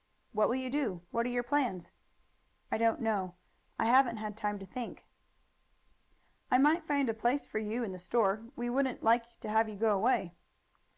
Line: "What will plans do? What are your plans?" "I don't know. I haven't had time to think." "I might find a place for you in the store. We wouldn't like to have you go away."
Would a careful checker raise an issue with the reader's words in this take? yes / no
yes